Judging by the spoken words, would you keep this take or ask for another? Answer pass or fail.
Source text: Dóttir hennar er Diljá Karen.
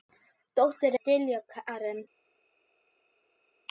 fail